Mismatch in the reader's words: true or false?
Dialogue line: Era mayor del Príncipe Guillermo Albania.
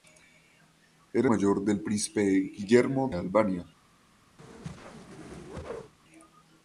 false